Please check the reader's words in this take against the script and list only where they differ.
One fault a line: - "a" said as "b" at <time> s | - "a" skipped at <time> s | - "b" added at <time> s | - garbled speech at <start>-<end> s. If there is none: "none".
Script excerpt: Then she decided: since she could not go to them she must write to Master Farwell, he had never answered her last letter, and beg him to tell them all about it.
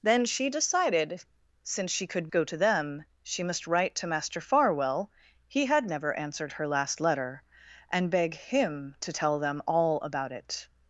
- "not" skipped at 2.3 s